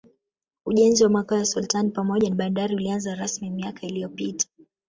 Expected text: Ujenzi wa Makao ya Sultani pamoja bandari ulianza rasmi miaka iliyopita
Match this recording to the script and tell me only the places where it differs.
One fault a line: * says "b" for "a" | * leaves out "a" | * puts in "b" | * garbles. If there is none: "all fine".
all fine